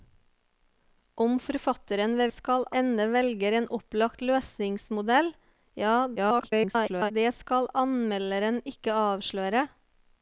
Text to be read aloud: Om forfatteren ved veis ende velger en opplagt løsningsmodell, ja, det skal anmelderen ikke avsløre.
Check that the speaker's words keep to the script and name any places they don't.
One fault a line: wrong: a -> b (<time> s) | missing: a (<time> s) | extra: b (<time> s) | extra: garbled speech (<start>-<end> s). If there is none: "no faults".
wrong: veis -> skal (2.3 s)
extra: garbled speech (6.2-7.1 s)